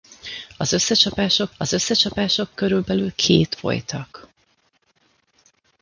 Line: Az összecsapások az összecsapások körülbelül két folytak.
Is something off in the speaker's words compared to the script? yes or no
no